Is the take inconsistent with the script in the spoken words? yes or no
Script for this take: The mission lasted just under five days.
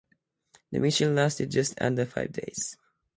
no